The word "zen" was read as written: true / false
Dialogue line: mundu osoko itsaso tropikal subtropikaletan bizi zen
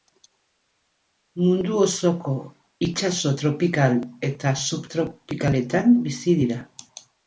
false